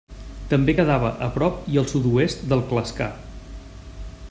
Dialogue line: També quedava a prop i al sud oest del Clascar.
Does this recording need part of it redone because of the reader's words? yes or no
no